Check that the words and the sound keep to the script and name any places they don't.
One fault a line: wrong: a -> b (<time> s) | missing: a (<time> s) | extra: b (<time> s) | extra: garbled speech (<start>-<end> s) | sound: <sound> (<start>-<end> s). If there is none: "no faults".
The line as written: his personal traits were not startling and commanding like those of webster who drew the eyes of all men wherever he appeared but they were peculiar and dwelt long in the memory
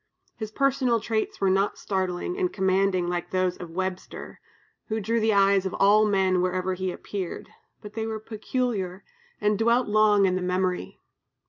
no faults